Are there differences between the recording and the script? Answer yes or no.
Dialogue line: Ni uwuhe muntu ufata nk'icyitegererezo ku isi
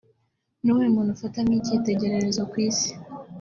no